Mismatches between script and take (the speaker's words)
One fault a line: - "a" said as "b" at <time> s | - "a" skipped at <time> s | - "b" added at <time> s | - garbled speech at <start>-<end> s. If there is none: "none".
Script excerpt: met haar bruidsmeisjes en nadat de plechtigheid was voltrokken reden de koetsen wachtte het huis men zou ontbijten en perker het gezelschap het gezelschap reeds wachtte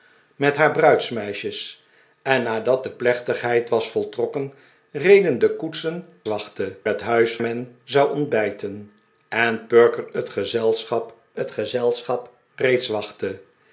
none